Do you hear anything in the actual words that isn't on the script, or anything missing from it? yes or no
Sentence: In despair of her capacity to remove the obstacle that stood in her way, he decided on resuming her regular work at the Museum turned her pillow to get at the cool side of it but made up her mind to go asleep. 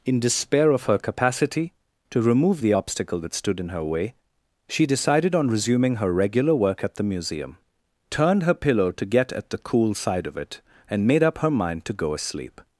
yes